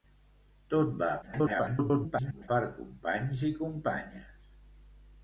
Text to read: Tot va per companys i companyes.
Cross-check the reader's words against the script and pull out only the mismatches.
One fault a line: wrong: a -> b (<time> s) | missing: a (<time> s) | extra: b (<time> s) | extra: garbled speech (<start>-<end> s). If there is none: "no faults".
extra: garbled speech (1.2-2.5 s)